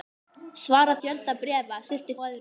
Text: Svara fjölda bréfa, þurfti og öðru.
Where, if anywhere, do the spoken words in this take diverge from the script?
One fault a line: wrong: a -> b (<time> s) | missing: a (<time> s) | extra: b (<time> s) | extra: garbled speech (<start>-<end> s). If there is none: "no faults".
no faults